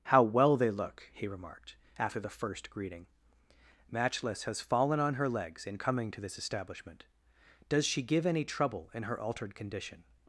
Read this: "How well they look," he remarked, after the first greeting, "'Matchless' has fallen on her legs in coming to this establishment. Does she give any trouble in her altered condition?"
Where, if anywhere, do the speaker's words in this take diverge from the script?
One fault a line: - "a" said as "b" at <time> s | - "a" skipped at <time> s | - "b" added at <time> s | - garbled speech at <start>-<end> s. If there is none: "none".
none